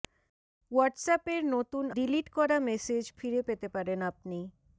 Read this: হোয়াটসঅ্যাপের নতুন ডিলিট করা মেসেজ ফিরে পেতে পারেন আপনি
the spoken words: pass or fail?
pass